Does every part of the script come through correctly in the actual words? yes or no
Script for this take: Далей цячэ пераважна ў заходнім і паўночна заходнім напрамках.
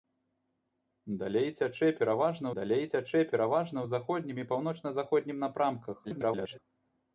no